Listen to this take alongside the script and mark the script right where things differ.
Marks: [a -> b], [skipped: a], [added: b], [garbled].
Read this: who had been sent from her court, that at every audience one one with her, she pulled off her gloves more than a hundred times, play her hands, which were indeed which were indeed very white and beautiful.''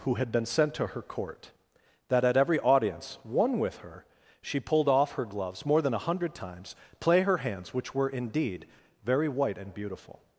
who had been sent [from -> to] her court, that at every audience one [skipped: one] with her, she pulled off her gloves more than a hundred times, play her hands, which were indeed [skipped: which were indeed] very white and beautiful.''